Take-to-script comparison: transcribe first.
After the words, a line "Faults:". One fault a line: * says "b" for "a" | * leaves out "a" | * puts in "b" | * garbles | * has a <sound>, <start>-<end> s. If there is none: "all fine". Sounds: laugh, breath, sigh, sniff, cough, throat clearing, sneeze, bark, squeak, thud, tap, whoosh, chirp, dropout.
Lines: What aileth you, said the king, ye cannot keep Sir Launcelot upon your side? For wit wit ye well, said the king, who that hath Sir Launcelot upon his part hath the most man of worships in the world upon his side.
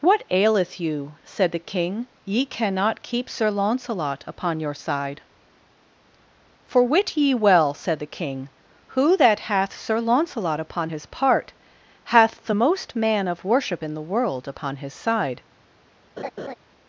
What aileth you, said the king, ye cannot keep Sir Launcelot upon your side? For wit ye well, said the king, who that hath Sir Launcelot upon his part hath the most man of worship in the world upon his side.
Faults:
* leaves out "wit"
* says "worship" for "worships"
* has a laugh, 16.2-16.5 s